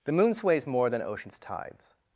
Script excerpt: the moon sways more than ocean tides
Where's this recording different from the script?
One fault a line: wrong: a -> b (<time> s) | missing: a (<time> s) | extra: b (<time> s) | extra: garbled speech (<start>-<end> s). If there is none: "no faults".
wrong: ocean -> oceans (1.0 s)